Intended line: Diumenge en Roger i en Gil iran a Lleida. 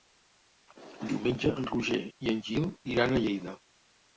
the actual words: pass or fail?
pass